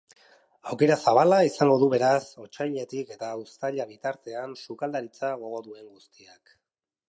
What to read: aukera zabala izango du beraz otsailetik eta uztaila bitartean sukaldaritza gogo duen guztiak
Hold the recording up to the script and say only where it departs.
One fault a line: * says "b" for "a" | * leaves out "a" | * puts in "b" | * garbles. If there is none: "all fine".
all fine